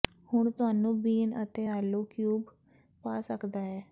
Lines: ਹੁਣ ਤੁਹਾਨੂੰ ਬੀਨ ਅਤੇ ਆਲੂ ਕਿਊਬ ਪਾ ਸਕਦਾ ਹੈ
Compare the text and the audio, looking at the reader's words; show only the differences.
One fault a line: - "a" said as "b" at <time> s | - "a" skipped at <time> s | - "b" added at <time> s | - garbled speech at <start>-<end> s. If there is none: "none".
none